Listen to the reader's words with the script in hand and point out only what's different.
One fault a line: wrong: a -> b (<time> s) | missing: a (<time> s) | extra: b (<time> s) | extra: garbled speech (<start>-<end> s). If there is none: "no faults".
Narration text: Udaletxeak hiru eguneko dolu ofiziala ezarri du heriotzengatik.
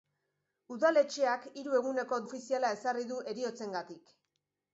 missing: dolu (2.2 s)